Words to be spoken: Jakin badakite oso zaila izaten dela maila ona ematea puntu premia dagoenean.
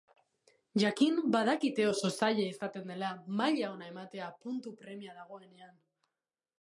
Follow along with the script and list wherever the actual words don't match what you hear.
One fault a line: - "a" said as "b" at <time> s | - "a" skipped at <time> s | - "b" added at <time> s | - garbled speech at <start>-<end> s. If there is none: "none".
none